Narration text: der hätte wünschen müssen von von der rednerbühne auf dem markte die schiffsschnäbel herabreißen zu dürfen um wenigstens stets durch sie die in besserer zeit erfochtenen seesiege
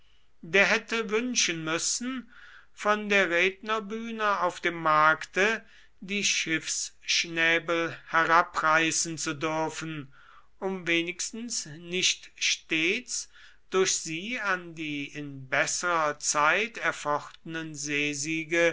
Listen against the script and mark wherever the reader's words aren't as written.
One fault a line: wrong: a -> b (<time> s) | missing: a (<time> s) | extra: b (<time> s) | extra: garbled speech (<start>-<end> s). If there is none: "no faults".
missing: von (3.1 s)
extra: nicht (11.7 s)
extra: an (14.4 s)